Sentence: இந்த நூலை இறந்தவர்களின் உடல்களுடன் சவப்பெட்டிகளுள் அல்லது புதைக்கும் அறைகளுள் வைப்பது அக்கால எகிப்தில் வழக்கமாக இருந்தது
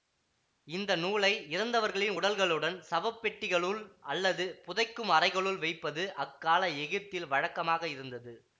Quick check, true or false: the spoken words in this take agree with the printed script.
true